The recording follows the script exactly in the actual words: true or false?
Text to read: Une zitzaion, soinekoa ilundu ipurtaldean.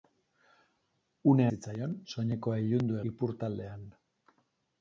true